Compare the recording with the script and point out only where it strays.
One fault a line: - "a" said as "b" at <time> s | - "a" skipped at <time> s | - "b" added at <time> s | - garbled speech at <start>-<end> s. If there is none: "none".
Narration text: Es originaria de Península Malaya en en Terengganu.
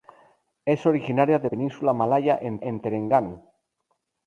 none